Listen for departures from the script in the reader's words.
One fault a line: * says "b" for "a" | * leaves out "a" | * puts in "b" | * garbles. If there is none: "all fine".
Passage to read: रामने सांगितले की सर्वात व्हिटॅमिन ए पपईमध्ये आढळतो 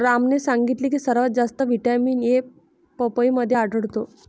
* puts in "जास्त"